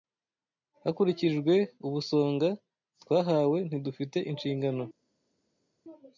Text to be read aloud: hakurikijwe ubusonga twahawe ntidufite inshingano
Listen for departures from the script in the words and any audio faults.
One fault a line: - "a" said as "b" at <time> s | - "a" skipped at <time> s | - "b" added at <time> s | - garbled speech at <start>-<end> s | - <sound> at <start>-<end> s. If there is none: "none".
none